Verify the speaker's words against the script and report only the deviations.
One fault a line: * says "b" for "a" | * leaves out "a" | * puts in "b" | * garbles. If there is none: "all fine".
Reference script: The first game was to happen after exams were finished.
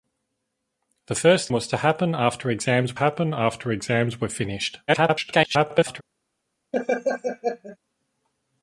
* leaves out "game"
* puts in "happen after exams"
* garbles